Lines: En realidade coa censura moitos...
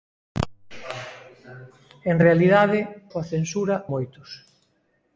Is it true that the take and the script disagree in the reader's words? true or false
false